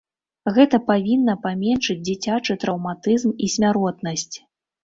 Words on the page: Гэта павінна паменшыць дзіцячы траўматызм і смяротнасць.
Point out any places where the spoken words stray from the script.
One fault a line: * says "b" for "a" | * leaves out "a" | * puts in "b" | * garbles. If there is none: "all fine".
all fine